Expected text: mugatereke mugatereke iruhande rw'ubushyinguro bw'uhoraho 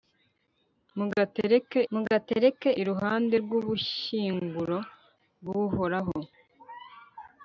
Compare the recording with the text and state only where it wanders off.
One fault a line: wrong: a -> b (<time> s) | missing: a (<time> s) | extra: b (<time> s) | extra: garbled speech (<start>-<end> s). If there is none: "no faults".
no faults